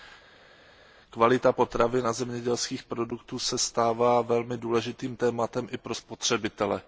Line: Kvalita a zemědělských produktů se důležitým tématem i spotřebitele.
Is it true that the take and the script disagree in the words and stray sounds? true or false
true